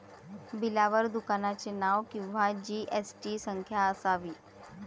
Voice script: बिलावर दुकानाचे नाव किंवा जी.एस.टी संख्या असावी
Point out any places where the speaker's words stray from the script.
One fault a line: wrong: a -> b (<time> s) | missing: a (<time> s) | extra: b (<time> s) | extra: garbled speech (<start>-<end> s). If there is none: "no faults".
no faults